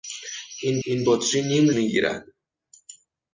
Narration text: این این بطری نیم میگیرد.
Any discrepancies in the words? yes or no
no